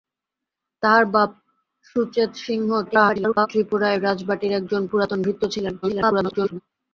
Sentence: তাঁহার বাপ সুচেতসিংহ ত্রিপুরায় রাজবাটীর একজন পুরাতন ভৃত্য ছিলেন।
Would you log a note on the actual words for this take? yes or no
yes